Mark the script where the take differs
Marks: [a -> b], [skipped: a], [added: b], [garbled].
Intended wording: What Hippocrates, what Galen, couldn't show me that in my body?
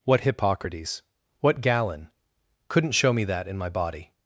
What Hippocrates, what Galen, couldn't show me that in my body?